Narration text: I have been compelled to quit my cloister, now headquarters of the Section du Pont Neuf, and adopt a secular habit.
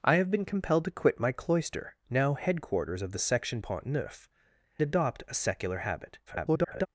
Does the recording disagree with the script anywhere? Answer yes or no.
yes